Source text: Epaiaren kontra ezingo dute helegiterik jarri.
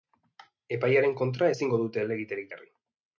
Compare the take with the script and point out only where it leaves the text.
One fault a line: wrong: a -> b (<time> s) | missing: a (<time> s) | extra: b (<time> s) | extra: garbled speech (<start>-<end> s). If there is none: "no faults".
no faults